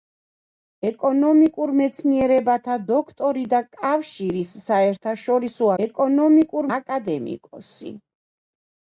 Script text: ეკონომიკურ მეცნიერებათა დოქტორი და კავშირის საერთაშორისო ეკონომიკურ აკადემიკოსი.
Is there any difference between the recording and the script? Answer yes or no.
no